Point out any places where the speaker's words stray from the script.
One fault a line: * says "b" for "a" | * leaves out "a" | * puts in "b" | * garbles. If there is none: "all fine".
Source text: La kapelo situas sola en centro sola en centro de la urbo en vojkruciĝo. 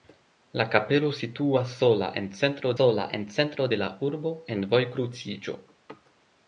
all fine